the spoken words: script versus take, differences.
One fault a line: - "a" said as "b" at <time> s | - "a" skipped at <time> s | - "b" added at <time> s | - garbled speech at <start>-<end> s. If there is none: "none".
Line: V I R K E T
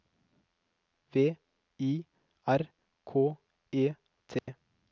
none